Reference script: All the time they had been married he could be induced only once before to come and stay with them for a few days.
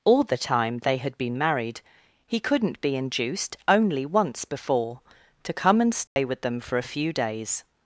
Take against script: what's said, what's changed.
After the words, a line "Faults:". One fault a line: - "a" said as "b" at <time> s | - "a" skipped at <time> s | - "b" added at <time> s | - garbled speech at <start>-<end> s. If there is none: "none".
All the time they had been married he couldn't be induced only once before to come and stay with them for a few days.
Faults:
- "could" said as "couldn't" at 2.4 s